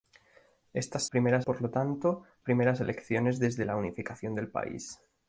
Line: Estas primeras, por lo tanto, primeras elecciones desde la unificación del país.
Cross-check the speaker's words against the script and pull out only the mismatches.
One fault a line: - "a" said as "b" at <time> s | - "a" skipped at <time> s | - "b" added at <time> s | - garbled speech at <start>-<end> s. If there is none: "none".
none